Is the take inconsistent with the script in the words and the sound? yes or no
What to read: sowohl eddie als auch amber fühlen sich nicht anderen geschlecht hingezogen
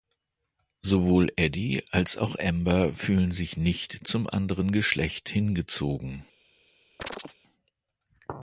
yes